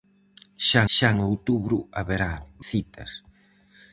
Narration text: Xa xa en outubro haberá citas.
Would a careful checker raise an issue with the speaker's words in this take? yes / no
no